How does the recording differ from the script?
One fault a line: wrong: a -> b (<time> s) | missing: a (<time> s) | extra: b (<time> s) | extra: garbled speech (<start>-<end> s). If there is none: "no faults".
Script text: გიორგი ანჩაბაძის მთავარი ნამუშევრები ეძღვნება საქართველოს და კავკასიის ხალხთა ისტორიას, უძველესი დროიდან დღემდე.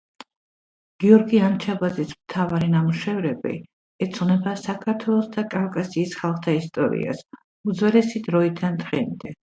no faults